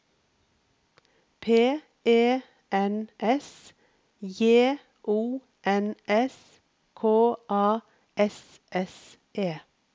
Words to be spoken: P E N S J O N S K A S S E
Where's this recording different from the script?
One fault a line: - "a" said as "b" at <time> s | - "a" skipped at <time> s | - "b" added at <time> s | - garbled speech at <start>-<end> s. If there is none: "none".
none